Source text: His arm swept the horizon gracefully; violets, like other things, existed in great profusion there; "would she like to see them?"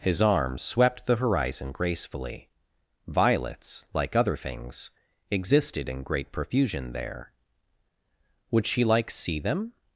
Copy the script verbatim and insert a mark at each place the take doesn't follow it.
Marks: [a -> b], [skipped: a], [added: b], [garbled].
His arm swept the horizon gracefully; violets, like other things, existed in great profusion there; "would she like [skipped: to] see them?"